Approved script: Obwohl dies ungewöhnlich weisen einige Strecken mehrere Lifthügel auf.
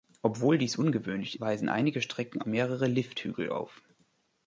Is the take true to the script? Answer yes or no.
yes